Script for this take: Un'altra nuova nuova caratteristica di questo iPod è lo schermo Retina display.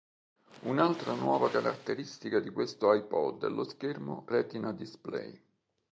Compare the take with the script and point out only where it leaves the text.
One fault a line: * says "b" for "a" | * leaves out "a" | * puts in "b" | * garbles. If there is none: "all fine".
* leaves out "nuova"